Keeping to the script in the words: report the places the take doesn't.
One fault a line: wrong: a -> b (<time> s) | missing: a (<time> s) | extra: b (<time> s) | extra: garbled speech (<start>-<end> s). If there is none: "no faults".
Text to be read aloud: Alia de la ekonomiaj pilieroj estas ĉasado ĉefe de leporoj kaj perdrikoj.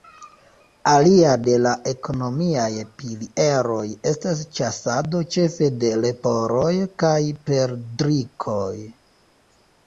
no faults